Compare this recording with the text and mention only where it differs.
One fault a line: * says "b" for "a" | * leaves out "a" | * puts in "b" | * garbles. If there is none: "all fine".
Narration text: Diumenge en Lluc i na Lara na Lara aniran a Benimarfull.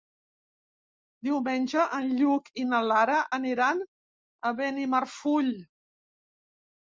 * leaves out "na Lara"